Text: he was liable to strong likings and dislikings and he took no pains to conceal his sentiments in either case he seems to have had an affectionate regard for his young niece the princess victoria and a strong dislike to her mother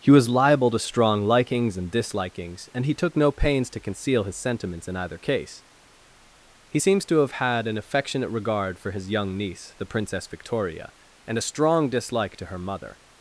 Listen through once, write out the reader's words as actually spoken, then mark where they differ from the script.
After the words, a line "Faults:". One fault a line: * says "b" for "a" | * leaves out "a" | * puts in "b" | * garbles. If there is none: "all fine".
he was liable to strong likings and dislikings and he took no pains to conceal his sentiments in either case he seems to have had an affectionate regard for his young niece the princess victoria and a strong dislike to her mother
Faults:
all fine